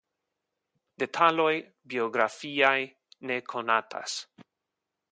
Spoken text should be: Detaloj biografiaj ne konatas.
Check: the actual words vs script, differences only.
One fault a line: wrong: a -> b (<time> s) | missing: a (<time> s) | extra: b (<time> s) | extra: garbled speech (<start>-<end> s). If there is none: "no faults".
no faults